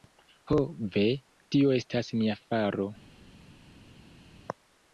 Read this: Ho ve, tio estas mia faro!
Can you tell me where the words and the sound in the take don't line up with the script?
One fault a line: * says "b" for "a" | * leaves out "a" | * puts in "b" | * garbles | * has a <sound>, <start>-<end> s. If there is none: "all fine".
all fine